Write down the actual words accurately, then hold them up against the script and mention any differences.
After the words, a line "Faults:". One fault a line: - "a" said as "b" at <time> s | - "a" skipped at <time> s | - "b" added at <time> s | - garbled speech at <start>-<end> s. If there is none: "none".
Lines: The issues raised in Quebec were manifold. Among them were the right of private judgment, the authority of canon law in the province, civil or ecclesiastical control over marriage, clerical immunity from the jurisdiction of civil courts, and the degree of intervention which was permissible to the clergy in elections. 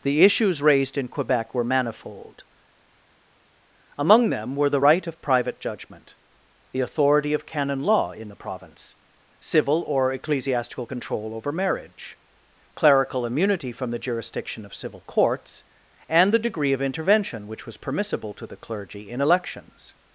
The issues raised in Quebec were manifold. Among them were the right of private judgment, the authority of canon law in the province, civil or ecclesiastical control over marriage, clerical immunity from the jurisdiction of civil courts, and the degree of intervention which was permissible to the clergy in elections.
Faults:
none